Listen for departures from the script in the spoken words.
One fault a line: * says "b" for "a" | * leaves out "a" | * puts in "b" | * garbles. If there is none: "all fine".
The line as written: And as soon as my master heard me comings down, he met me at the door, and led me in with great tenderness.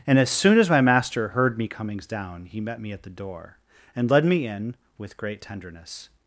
all fine